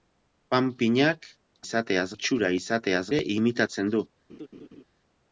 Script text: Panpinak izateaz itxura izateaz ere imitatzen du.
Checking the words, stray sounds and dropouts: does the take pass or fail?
fail